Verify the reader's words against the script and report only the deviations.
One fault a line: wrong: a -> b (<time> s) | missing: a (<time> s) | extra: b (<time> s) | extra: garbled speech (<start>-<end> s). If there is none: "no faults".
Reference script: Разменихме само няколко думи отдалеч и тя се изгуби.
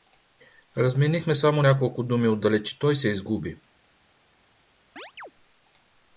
wrong: тя -> той (2.8 s)